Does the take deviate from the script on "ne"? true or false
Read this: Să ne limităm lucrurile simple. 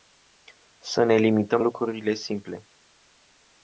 false